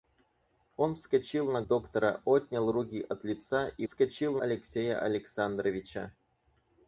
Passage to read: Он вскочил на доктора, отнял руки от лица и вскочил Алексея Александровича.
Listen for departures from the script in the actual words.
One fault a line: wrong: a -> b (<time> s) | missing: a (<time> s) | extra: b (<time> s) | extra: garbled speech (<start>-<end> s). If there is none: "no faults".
no faults